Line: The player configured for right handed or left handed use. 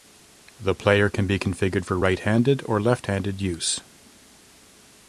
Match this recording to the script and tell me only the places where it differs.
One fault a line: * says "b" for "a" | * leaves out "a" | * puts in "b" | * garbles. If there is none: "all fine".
* puts in "can be"